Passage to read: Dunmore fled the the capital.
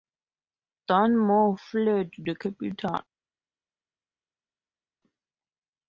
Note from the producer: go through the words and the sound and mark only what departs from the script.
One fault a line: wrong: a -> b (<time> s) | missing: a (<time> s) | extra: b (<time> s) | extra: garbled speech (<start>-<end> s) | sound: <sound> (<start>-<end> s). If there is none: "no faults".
missing: the (2.4 s)